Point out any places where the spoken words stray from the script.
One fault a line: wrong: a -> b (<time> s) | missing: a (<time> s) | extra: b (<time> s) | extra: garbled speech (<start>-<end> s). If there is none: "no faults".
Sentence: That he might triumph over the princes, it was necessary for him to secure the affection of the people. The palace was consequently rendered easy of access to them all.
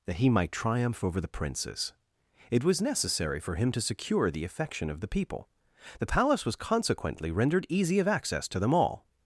no faults